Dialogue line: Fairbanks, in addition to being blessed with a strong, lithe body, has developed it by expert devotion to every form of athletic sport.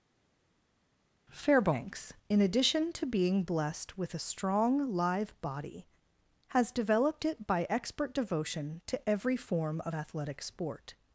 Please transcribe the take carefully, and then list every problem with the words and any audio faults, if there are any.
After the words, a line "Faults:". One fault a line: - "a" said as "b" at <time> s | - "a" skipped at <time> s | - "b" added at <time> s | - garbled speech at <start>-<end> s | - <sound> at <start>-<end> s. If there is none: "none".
Fairbanks, in addition to being blessed with a strong, live body, has developed it by expert devotion to every form of athletic sport.
Faults:
- "lithe" said as "live" at 4.9 s